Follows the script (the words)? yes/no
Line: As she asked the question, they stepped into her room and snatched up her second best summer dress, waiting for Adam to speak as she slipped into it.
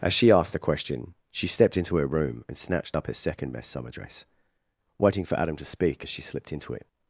no